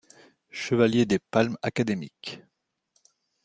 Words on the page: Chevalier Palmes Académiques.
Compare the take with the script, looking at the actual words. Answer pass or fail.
fail